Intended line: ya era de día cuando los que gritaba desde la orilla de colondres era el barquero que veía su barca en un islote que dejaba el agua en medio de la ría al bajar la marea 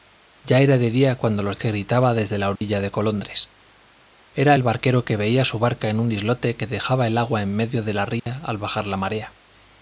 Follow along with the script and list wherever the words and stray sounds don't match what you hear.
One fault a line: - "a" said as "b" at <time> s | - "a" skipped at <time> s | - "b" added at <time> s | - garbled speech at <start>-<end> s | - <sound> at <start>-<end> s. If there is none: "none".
- dropout at 2.6-2.6 s
- dropout at 8.2-8.3 s